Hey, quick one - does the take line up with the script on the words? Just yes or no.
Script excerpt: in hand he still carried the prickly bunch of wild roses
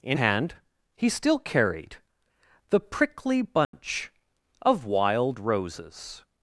yes